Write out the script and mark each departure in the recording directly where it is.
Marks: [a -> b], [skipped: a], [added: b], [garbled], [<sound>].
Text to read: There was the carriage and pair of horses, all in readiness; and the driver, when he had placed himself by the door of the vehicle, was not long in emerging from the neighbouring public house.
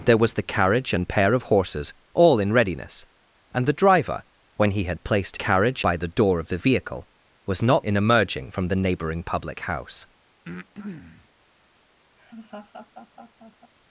There was the carriage and pair of horses, all in readiness; and the driver, when he had placed [himself -> carriage] by the door of the vehicle, was not [skipped: long] in emerging from the neighbouring public house. [breath] [laugh]